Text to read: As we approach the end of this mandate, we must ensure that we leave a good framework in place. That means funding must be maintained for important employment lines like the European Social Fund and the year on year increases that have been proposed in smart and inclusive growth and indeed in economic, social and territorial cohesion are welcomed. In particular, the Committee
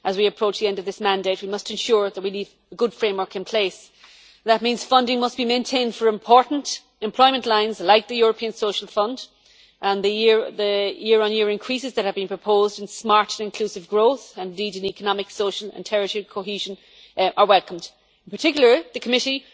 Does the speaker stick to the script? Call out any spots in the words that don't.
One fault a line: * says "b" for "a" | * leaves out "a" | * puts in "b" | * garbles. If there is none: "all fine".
all fine